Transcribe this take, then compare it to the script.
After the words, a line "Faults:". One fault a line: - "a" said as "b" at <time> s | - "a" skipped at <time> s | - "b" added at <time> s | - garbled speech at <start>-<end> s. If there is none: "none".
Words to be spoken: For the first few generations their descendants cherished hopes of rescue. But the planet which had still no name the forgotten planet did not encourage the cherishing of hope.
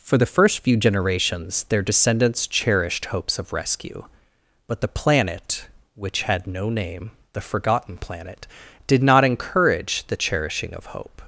For the first few generations their descendants cherished hopes of rescue. But the planet which had no name the forgotten planet did not encourage the cherishing of hope.
Faults:
- "still" skipped at 6.5 s